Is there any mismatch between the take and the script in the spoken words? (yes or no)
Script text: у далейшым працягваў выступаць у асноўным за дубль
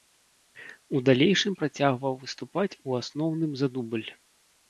no